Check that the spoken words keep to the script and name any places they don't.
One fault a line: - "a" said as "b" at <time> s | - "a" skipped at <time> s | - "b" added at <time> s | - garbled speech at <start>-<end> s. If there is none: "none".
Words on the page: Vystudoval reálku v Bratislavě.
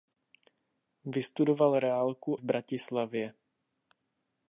none